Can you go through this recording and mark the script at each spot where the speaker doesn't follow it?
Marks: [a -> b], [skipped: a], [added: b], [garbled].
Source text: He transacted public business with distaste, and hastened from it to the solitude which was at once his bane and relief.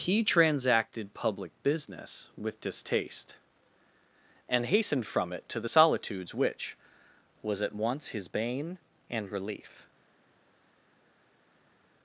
He transacted public business with distaste, and hastened from it to the [solitude -> solitudes] which was at once his bane and relief.